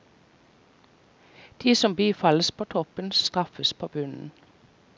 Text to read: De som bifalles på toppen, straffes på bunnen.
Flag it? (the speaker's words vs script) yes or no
no